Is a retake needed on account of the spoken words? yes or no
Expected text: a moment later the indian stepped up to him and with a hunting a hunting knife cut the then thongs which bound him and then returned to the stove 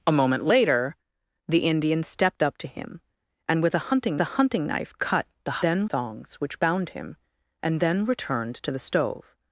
no